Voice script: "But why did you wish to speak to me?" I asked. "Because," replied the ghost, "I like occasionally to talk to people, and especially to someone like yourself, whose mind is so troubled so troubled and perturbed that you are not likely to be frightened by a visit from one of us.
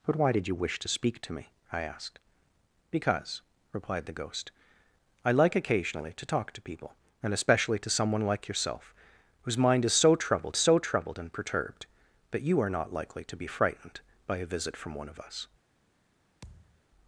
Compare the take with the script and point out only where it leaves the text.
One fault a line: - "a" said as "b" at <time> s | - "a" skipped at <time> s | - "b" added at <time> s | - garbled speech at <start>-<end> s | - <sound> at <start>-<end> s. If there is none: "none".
- thud at 16.4-16.8 s